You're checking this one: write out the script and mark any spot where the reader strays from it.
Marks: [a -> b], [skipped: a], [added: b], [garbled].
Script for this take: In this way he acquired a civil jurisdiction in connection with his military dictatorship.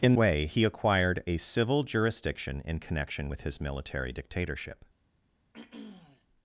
In [skipped: this] way he acquired a civil jurisdiction in connection with his military dictatorship.